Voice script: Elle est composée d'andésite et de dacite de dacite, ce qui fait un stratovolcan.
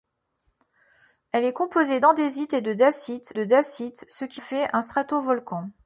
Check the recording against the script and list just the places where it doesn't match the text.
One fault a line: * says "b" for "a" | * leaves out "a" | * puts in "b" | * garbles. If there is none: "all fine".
all fine